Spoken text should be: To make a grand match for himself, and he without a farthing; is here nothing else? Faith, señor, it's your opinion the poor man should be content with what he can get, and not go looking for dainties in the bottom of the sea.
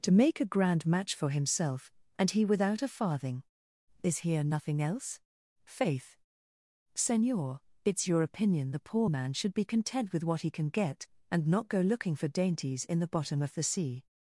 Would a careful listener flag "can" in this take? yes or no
no